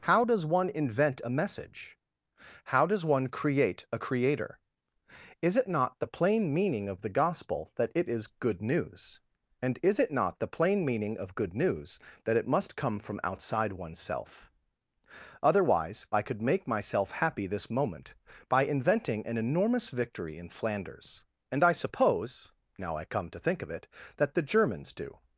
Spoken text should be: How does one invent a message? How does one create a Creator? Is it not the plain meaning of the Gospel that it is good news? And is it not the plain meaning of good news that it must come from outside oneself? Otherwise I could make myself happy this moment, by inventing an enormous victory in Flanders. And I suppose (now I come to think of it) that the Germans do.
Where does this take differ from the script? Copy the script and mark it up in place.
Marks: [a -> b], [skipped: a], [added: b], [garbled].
How does one invent a message? How does one create a Creator? Is it not the plain meaning of the Gospel that it is good news? And is it not the plain meaning of good news that it must come from outside oneself? Otherwise I could make myself happy this moment, by inventing an enormous victory in Flanders. And I suppose (now I come to think of it) that the Germans do.